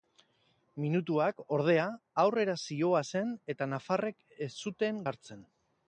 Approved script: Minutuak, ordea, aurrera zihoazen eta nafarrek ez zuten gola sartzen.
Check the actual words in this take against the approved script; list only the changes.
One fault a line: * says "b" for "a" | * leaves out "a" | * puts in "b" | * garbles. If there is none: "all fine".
* leaves out "gola"